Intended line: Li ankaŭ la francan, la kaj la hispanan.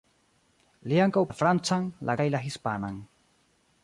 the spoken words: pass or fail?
pass